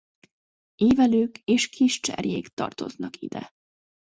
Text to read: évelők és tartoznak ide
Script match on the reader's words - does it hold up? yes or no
no